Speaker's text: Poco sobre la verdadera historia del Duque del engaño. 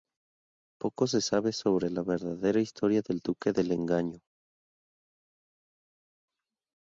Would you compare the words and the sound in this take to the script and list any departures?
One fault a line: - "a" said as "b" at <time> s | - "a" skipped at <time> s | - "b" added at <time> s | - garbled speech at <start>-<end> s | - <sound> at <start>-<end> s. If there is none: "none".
- "se sabe" added at 1.1 s